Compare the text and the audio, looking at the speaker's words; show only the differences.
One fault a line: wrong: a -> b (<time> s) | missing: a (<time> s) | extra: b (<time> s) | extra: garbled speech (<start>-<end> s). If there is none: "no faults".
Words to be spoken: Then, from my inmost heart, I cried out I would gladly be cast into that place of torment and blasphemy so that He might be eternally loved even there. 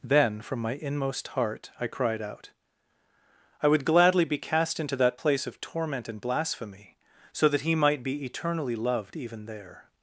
no faults